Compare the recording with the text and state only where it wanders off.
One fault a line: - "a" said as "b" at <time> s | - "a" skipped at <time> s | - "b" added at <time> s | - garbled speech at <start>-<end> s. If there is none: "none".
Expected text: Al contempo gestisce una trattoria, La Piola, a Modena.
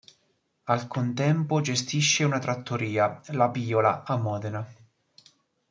none